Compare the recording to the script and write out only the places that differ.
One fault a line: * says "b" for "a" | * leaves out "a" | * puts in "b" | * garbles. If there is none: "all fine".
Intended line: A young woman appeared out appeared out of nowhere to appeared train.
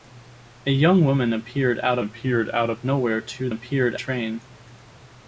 all fine